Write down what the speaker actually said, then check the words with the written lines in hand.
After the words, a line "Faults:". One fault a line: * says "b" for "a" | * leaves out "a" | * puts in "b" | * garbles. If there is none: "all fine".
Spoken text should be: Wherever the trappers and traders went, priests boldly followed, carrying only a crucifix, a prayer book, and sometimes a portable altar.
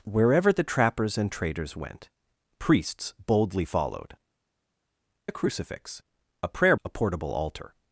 Wherever the trappers and traders went, priests boldly followed, a crucifix, a prayer a portable altar.
Faults:
* leaves out "carrying only"
* leaves out "book and sometimes"